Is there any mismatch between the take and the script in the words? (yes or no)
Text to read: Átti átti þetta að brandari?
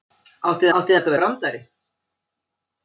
no